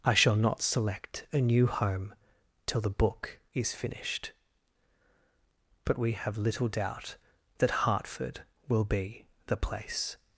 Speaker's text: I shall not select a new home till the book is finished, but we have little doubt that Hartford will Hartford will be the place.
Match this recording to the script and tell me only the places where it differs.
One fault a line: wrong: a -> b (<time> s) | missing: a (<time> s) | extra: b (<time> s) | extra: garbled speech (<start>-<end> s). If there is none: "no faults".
missing: Hartford will (8.8 s)